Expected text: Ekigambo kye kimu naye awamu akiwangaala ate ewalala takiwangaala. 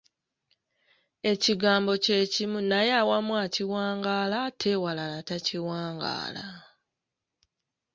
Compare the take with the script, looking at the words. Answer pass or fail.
pass